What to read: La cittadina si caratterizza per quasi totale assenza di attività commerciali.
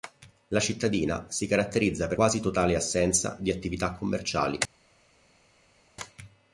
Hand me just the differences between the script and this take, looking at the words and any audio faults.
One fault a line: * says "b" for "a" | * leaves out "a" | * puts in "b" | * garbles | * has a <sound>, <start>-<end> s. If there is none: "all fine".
all fine